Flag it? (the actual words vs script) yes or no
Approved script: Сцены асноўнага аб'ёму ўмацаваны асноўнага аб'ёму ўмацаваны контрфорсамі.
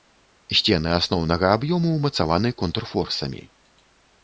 yes